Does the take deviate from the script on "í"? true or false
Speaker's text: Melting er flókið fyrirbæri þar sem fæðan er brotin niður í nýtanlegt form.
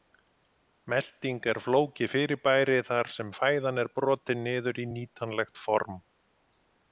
false